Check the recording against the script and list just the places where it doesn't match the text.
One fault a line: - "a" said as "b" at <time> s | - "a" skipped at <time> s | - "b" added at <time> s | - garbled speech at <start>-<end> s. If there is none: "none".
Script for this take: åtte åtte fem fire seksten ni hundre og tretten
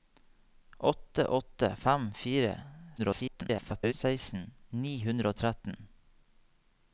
- garbled speech at 3.0-3.9 s